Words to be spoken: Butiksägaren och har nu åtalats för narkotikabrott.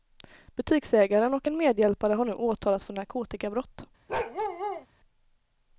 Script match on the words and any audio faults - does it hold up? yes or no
no